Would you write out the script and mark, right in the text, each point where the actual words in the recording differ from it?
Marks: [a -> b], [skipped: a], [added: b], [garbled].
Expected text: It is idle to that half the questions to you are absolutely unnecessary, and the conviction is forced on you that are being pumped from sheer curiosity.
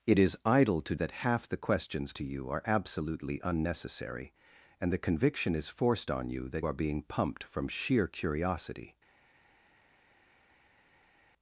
It is idle to that half the questions to you are absolutely unnecessary, and the conviction is forced on you that are being pumped from sheer curiosity.